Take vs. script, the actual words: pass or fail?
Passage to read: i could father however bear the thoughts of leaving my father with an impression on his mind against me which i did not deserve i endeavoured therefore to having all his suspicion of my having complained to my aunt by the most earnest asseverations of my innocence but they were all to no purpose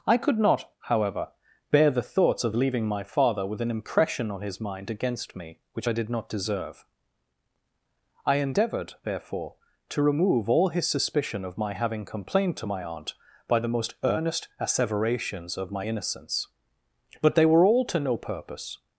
fail